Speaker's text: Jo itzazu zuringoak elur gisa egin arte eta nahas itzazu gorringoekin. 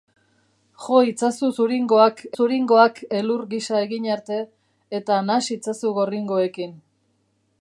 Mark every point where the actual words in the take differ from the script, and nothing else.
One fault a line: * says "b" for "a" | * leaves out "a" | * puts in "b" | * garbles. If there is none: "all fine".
* puts in "zuringoak"